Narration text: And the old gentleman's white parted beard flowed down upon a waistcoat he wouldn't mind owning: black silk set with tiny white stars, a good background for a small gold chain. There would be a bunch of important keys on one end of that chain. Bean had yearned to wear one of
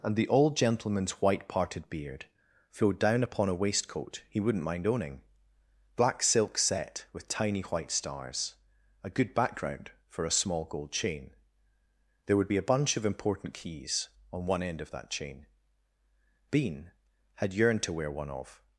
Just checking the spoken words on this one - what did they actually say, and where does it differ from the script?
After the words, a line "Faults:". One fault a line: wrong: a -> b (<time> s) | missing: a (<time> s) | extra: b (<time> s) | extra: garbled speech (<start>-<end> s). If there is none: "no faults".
And the old gentleman's white parted beard flowed down upon a waistcoat he wouldn't mind owning: black silk set with tiny white stars, a good background for a small gold chain. There would be a bunch of important keys on one end of that chain. Bean had yearned to wear one of
Faults:
no faults